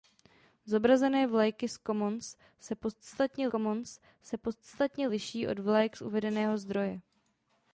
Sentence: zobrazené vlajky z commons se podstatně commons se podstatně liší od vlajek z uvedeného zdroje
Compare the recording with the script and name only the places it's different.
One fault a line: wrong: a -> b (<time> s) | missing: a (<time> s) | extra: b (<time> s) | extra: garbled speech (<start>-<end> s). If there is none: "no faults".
no faults